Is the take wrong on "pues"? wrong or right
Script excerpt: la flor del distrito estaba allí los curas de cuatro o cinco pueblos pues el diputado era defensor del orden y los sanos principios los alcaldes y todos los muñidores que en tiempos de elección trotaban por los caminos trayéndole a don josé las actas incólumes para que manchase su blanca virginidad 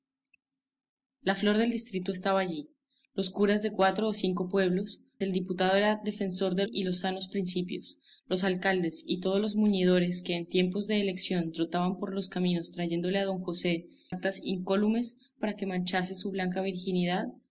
wrong